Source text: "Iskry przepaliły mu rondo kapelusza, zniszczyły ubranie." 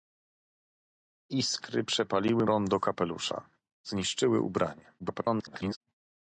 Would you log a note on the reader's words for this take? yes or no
yes